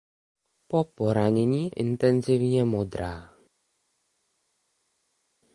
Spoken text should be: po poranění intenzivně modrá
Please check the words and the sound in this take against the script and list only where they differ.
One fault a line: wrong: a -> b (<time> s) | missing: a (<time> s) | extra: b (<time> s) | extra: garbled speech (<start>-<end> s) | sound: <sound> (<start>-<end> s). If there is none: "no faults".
no faults